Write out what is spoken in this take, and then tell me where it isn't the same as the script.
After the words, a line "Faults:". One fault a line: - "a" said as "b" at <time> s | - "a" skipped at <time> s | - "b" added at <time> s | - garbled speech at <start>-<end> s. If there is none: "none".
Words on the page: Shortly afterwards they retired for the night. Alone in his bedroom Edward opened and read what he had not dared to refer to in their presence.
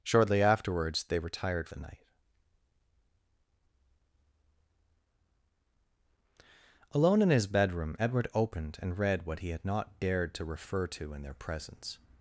Shortly afterwards they retired the night. Alone in his bedroom Edward opened and read what he had not dared to refer to in their presence.
Faults:
- "for" skipped at 1.7 s